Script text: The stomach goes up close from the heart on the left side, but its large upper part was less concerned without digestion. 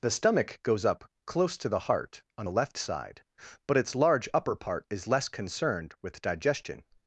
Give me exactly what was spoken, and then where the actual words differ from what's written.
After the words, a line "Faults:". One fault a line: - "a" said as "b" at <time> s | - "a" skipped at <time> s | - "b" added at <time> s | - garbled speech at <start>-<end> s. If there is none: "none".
The stomach goes up close to the heart on the left side, but its large upper part is less concerned with digestion.
Faults:
- "from" said as "to" at 1.6 s
- "was" said as "is" at 4.9 s
- "without" said as "with" at 6.0 s